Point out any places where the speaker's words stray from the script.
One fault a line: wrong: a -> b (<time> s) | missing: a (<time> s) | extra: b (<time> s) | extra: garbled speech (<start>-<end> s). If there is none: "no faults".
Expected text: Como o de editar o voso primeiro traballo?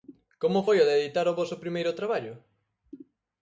extra: foi (0.6 s)